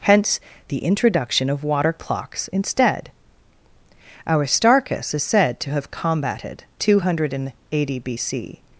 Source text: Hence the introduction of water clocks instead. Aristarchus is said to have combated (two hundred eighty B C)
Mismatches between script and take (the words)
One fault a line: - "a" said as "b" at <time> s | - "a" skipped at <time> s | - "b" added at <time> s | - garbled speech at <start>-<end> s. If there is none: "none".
none